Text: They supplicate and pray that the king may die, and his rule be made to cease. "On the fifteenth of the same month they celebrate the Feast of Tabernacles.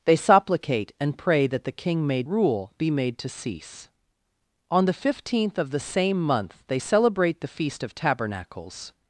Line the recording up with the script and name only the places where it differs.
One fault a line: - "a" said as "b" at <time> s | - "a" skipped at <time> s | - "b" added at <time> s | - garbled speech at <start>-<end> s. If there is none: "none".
- "die and his" skipped at 2.2 s